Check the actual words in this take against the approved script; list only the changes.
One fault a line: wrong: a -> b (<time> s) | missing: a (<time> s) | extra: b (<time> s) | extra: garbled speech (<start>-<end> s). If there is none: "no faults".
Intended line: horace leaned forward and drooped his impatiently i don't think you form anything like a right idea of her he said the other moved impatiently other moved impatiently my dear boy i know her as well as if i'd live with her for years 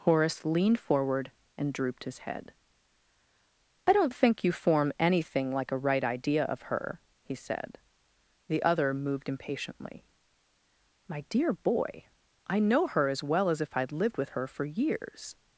wrong: impatiently -> head (2.2 s)
missing: other moved impatiently (10.0 s)
wrong: live -> lived (13.9 s)